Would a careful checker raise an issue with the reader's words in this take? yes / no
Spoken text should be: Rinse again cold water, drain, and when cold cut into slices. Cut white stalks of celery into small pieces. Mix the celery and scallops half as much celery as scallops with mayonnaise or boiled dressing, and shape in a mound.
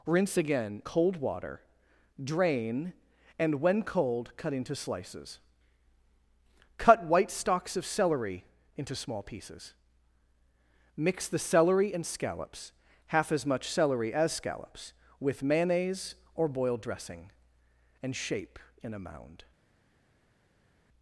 no